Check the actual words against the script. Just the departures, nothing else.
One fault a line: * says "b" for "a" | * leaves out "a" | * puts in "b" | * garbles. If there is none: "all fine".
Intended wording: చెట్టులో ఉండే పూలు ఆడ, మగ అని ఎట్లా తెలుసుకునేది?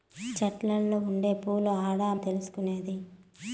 * leaves out "మగ అని ఎట్లా"